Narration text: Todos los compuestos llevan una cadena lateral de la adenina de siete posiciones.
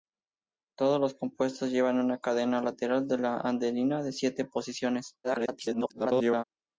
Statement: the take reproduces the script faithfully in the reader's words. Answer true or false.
false